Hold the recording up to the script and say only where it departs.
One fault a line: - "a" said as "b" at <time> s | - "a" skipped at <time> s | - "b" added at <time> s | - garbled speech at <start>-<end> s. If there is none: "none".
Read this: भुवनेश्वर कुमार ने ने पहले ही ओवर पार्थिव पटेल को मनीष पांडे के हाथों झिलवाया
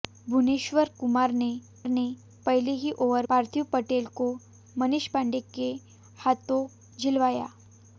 none